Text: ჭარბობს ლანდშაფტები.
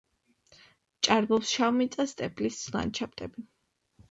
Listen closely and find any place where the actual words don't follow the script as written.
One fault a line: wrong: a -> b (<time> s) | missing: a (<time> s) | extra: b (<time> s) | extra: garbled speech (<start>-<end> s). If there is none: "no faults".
extra: შავმიწა სტეპის (1.6 s)